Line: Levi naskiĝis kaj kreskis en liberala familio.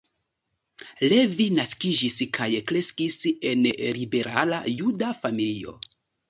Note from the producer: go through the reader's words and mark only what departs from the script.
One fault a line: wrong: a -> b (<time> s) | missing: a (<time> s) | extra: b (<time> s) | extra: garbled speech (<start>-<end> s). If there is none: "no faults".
extra: juda (4.8 s)